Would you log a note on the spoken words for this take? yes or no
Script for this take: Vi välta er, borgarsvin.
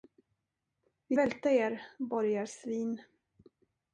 no